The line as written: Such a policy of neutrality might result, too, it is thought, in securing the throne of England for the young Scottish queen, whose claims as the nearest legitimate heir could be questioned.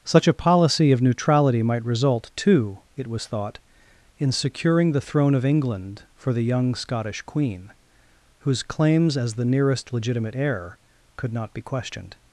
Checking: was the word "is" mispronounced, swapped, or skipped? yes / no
yes